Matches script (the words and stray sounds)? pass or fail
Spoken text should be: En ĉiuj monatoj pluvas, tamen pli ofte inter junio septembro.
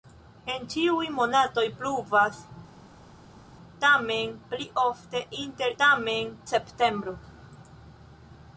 fail